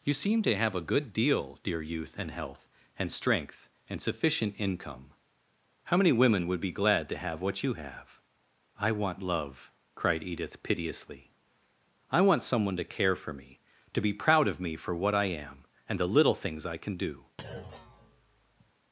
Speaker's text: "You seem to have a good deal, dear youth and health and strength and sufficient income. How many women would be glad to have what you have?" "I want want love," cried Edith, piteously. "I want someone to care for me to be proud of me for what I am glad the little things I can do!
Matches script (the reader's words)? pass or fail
fail